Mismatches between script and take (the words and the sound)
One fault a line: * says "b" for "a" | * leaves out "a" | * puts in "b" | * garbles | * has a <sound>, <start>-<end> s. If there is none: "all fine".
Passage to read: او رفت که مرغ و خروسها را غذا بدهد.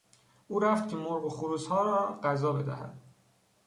all fine